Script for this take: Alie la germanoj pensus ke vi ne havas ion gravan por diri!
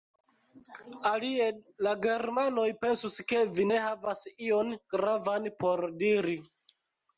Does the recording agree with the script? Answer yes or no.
yes